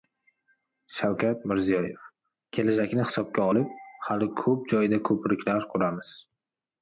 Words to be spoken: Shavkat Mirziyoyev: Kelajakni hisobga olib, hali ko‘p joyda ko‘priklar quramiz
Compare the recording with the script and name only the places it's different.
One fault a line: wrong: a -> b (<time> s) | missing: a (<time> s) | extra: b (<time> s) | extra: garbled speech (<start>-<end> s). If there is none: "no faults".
no faults